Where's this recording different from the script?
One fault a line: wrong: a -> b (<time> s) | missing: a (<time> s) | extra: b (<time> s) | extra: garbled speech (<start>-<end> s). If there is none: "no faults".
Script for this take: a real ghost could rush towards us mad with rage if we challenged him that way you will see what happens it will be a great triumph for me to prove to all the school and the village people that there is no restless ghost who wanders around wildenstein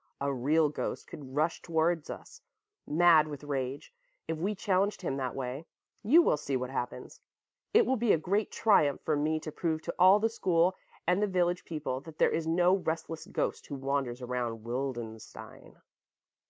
no faults